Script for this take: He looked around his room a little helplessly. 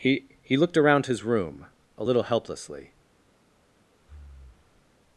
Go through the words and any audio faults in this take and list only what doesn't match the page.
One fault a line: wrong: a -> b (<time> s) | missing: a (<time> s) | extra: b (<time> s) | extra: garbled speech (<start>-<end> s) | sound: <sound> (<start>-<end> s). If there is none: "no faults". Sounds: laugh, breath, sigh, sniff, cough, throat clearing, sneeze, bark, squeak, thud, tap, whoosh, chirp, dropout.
extra: he (0.4 s)
sound: breath (4.0-4.9 s)